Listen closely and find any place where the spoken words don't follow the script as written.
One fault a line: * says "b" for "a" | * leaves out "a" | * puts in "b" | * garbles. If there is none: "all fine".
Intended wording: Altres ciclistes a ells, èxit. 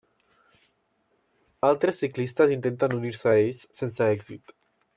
* puts in "intenten unir se"
* puts in "sense"